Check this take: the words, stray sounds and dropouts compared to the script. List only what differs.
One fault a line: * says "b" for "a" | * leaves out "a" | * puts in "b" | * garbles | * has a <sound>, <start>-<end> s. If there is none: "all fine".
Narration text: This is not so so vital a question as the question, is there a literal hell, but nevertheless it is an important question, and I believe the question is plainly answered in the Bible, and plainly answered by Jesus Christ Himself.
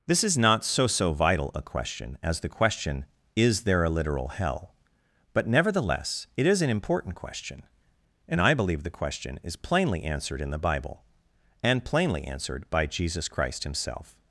all fine